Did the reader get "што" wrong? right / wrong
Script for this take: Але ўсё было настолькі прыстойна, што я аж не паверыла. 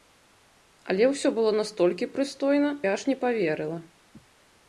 wrong